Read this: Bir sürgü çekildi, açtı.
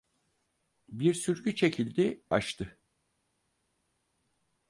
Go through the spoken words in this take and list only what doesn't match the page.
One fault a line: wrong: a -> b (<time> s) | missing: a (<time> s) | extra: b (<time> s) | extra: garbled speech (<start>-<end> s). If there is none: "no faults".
no faults